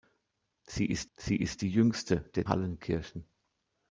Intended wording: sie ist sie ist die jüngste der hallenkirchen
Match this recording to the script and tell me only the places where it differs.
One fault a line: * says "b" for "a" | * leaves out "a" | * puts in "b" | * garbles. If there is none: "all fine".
all fine